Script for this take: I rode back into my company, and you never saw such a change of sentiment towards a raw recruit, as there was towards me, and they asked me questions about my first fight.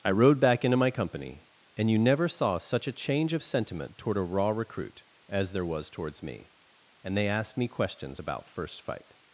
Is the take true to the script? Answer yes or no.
no